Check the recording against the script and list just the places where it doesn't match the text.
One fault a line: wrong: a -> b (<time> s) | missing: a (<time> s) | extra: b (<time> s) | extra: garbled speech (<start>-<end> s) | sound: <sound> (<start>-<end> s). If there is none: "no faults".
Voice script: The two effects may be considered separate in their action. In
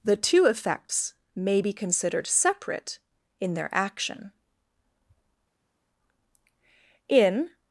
no faults